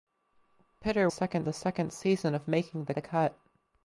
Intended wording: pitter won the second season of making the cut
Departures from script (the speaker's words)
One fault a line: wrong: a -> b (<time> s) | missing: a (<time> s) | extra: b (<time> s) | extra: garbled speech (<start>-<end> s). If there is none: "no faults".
wrong: won -> second (1.1 s)
extra: the (2.9 s)